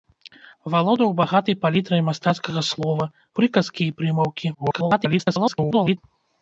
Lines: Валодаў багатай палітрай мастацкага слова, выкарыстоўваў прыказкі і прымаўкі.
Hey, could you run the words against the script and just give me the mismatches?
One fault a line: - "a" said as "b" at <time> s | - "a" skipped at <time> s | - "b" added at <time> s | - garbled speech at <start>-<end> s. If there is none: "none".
- "выкарыстоўваў" skipped at 3.1 s
- garbled speech at 4.5-6.0 s